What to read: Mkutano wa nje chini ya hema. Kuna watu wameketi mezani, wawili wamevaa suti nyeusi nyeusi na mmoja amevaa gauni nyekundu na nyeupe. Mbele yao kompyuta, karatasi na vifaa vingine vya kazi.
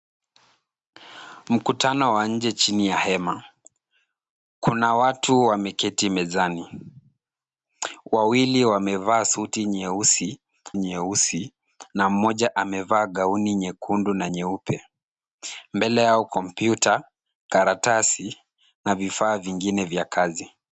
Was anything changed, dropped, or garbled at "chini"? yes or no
no